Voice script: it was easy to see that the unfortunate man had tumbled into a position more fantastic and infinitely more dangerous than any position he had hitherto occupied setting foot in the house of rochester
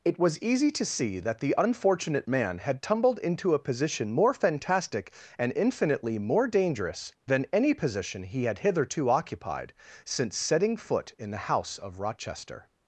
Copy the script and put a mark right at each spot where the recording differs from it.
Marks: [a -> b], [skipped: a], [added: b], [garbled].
it was easy to see that the unfortunate man had tumbled into a position more fantastic and infinitely more dangerous than any position he had hitherto occupied [added: since] setting foot in the house of rochester